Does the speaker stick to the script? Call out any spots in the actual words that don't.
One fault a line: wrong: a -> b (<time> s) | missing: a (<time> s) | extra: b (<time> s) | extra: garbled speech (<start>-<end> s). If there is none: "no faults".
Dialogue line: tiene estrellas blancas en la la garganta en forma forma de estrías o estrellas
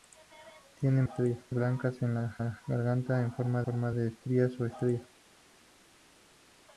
no faults